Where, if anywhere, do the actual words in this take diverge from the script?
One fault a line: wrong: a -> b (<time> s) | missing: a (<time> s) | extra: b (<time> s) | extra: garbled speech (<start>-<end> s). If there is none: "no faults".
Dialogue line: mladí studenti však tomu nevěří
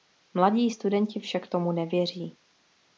no faults